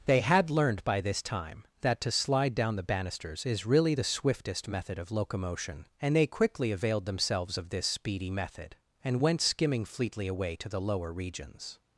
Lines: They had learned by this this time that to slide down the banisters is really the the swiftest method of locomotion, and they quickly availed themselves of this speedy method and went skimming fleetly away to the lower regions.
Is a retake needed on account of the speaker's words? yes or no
yes